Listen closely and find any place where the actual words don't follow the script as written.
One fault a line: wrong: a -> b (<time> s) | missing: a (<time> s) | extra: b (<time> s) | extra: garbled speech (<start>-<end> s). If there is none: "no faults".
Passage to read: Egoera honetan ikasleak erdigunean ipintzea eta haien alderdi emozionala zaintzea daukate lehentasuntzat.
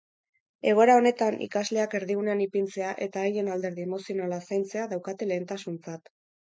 no faults